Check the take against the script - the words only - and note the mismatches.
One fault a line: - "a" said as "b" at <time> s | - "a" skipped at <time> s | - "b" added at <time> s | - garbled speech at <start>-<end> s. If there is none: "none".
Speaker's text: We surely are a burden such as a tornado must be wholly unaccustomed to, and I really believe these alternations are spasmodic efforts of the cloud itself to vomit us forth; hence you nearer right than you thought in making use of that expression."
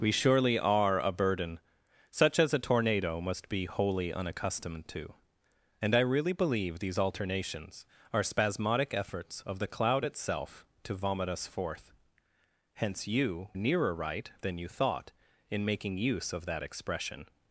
none